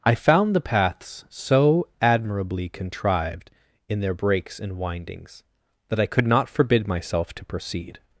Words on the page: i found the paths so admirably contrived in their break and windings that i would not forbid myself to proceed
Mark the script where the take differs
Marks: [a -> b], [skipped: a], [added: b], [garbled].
i found the paths so admirably contrived in their [break -> breaks] and windings that i [would -> could] not forbid myself to proceed